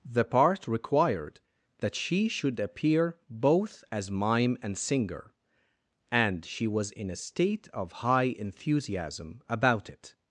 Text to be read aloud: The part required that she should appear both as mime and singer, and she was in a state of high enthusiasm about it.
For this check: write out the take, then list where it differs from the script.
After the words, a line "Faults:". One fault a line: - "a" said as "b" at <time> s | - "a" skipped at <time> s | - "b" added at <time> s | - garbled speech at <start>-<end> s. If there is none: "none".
The part required that she should appear both as mime and singer, and she was in a state of high enthusiasm about it.
Faults:
none